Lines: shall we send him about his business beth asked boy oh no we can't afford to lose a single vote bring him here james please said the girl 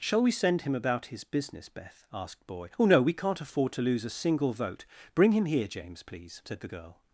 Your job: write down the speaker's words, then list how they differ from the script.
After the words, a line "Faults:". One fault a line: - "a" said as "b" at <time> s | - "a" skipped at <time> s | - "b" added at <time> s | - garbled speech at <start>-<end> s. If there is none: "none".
shall we send him about his business beth asked boy oh no we can't afford to lose a single vote bring him here james please said the girl
Faults:
none